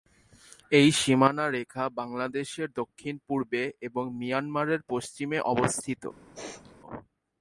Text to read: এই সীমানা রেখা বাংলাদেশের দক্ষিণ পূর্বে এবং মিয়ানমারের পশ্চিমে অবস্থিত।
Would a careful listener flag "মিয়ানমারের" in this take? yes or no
no